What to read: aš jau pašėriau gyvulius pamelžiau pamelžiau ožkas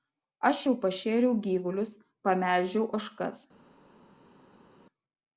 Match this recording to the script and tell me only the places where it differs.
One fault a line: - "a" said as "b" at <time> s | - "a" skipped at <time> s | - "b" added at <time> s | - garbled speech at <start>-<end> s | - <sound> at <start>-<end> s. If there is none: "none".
- "pamelžiau" skipped at 2.9 s